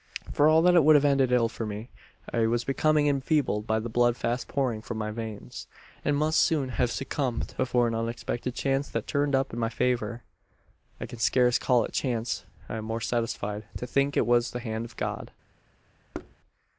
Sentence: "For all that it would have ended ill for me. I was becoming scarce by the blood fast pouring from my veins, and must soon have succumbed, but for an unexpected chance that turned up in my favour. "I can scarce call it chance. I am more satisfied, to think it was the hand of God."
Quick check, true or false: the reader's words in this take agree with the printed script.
false